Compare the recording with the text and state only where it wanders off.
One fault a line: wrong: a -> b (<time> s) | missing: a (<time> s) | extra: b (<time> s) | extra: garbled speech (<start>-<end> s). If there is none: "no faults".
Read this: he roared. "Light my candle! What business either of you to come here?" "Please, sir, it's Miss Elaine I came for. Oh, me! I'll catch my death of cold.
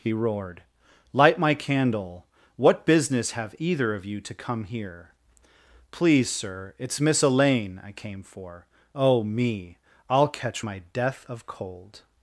extra: have (3.3 s)